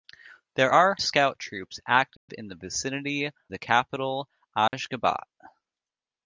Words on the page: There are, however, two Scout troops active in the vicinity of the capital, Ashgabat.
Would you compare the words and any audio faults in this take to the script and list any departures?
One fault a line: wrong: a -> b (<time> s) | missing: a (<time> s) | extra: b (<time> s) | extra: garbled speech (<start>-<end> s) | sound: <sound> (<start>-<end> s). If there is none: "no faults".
missing: however two (1.0 s)
sound: dropout (2.2-2.3 s)
missing: of (3.3 s)
sound: dropout (4.7-4.7 s)